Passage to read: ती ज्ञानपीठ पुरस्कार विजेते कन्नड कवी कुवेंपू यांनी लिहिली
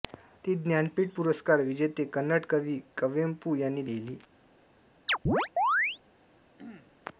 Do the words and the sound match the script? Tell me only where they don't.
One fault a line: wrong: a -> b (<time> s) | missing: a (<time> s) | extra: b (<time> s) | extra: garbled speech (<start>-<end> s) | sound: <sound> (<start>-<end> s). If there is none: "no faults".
sound: chirp (5.1-6.0 s)
sound: throat clearing (6.6-6.9 s)